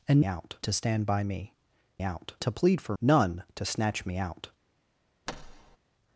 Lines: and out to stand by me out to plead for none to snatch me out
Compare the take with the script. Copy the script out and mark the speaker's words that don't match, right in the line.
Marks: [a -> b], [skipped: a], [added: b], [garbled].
and out to stand by me out to plead for none to snatch me out